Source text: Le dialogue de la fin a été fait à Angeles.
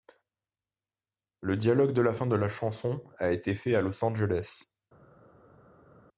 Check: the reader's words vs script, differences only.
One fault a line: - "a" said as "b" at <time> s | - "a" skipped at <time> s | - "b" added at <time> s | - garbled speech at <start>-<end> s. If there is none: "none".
- "de la chanson" added at 2.3 s
- "Los" added at 3.8 s